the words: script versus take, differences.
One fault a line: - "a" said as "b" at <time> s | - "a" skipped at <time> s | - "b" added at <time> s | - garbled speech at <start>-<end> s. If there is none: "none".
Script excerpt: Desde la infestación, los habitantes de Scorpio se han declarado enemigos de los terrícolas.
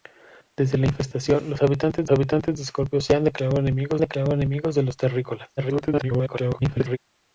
- "habitantes" added at 2.1 s
- "declarado enemigos" added at 4.0 s
- garbled speech at 5.6-7.0 s